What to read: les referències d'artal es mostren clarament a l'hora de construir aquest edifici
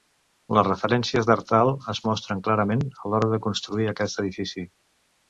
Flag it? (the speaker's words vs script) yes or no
no